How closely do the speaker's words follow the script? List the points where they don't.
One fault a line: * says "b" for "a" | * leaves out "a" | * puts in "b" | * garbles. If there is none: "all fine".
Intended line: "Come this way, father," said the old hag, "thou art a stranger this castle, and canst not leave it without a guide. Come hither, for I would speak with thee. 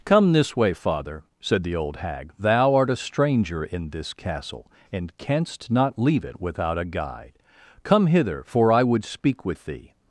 * puts in "in"